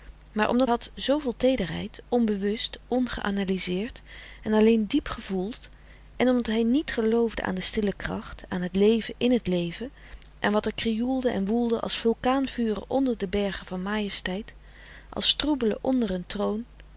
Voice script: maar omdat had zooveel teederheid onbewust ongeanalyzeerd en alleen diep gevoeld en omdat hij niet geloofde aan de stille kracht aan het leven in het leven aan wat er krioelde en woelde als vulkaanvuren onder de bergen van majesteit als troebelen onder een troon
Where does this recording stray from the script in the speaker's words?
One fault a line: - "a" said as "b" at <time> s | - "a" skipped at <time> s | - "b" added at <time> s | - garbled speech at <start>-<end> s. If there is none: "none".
none